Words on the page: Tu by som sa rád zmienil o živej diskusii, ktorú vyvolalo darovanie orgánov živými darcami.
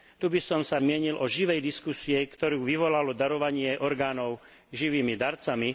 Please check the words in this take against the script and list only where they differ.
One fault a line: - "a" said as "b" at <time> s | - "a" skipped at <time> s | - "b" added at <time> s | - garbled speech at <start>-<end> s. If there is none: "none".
- "rád" skipped at 0.8 s